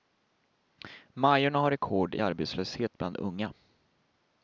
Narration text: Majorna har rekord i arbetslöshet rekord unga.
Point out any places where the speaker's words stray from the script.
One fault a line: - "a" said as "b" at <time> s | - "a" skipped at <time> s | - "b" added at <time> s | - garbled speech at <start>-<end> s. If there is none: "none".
- "rekord" said as "bland" at 3.0 s